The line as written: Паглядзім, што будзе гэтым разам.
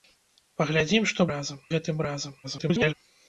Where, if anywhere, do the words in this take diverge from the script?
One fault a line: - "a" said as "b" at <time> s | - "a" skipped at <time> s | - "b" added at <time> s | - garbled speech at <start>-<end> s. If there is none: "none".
- "будзе" said as "разам" at 1.3 s
- garbled speech at 2.4-2.9 s